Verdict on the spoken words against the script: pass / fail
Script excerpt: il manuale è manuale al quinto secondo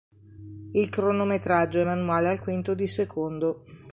fail